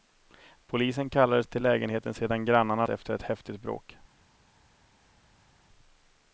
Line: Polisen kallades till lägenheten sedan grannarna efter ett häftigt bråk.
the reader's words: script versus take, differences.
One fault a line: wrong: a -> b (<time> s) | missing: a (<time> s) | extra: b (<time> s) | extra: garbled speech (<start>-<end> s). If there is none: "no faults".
no faults